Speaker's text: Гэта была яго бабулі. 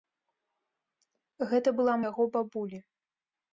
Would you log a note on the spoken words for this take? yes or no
no